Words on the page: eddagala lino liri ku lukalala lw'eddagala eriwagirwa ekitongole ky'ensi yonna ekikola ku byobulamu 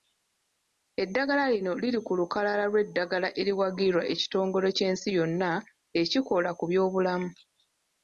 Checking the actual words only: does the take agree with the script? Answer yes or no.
yes